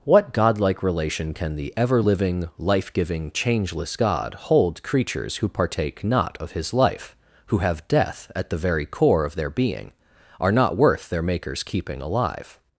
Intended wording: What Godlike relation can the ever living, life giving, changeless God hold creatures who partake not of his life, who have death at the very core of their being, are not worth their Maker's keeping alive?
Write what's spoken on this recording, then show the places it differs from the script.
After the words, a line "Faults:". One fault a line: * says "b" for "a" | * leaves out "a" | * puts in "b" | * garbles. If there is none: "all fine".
What Godlike relation can the ever living, life giving, changeless God hold creatures who partake not of his life, who have death at the very core of their being, are not worth their Maker's keeping alive?
Faults:
all fine